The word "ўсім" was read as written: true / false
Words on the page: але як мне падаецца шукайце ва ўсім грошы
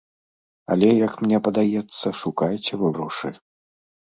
false